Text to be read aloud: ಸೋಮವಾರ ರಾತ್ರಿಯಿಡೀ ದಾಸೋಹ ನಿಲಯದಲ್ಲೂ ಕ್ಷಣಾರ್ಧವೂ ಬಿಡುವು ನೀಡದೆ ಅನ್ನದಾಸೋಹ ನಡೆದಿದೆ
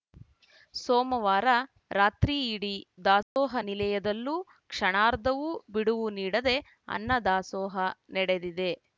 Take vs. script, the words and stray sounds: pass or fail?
fail